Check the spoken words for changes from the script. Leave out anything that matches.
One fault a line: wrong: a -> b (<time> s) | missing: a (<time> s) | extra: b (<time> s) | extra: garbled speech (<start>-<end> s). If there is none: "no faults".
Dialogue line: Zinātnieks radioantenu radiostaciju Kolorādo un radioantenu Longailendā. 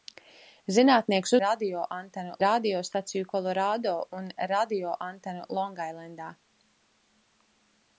no faults